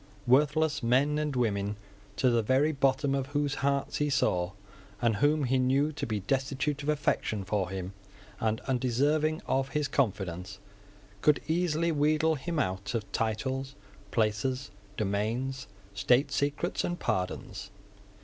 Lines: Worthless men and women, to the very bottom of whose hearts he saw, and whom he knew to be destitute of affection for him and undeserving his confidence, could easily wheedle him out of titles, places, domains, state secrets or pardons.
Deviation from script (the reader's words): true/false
true